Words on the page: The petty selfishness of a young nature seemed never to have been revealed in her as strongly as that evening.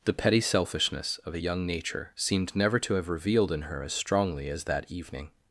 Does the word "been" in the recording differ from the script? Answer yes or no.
yes